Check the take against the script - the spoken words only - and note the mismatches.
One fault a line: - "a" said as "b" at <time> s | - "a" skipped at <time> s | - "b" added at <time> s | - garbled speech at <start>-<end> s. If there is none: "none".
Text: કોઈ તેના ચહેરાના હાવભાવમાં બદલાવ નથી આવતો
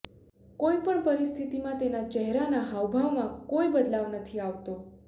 - "પણ પરિસ્થિતિમાં" added at 0.8 s
- "કોઈ" added at 3.5 s